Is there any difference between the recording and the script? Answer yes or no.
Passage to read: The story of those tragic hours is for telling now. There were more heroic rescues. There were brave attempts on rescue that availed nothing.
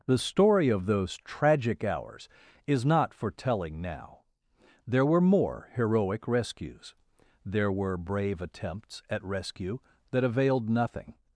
yes